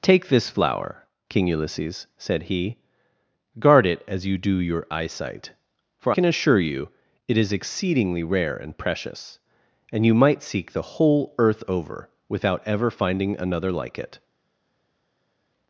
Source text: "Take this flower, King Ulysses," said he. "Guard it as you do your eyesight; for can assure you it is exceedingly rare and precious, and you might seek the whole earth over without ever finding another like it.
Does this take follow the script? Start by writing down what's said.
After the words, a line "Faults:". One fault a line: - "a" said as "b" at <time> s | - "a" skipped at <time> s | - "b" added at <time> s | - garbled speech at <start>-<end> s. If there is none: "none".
"Take this flower, King Ulysses," said he. "Guard it as you do your eyesight; for can assure you it is exceedingly rare and precious, and you might seek the whole earth over without ever finding another like it.
Faults:
none